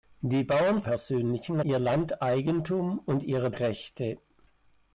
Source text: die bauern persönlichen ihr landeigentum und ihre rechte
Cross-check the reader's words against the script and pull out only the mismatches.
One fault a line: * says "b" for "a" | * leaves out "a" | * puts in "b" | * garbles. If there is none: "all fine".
all fine